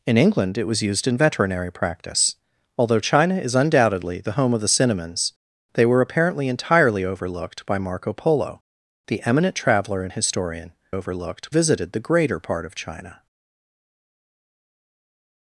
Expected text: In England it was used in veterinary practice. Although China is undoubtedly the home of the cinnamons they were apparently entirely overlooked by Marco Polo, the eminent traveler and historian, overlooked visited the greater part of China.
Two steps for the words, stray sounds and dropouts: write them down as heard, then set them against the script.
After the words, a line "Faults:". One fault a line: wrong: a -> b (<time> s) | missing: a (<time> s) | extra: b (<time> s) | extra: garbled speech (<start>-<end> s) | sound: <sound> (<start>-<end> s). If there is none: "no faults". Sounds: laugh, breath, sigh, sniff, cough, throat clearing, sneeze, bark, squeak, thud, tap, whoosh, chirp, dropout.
In England it was used in veterinary practice. Although China is undoubtedly the home of the cinnamons they were apparently entirely overlooked by Marco Polo, the eminent traveler and historian, overlooked visited the greater part of China.
Faults:
no faults